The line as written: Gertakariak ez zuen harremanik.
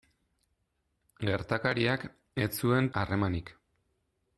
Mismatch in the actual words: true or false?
false